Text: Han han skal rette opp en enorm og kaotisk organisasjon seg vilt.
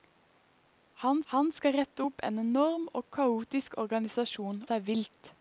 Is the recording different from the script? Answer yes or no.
no